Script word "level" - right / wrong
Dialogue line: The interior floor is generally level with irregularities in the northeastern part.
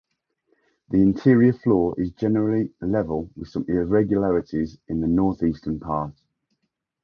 right